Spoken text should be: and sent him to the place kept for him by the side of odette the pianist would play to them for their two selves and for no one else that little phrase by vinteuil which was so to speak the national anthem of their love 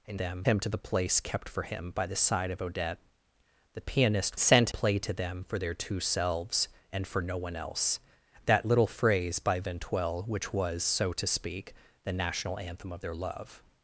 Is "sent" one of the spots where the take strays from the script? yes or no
yes